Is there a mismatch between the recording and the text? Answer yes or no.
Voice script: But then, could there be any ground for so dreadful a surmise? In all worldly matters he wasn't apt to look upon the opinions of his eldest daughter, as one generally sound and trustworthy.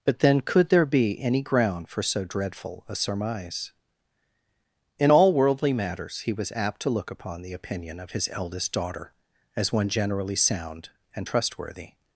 yes